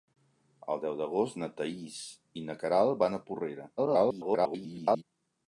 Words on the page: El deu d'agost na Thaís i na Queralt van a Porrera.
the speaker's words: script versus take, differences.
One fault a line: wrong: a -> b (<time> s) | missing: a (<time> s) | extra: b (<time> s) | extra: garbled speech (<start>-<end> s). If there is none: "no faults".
extra: garbled speech (3.8-5.0 s)